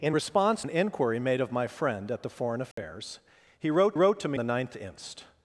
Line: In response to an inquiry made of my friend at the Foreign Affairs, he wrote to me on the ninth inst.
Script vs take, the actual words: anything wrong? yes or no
yes